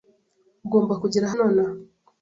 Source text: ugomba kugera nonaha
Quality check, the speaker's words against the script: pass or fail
pass